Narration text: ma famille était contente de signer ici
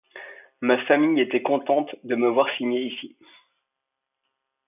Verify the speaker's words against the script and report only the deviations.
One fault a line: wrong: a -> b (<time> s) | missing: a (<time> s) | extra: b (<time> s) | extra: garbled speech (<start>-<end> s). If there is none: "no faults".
extra: me voir (2.1 s)